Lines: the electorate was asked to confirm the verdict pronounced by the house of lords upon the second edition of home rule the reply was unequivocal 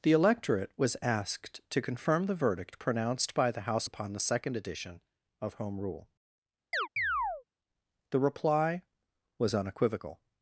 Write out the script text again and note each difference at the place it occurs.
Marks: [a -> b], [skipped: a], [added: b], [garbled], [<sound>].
the electorate was asked to confirm the verdict pronounced by the house [skipped: of lords] upon the second edition of home rule [chirp] the reply was unequivocal